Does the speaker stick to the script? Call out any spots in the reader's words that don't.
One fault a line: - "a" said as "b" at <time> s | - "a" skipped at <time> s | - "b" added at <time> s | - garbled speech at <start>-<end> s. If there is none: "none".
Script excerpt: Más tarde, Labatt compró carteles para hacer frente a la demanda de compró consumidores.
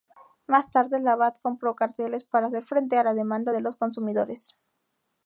- "compró" said as "los" at 3.6 s